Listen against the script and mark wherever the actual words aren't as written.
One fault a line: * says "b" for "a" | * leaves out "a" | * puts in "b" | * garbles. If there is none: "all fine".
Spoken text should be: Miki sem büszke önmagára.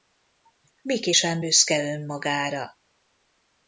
all fine